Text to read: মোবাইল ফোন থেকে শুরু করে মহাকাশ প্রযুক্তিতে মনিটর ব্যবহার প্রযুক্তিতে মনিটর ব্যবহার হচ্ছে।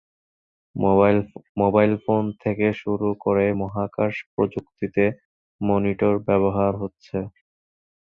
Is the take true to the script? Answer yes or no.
no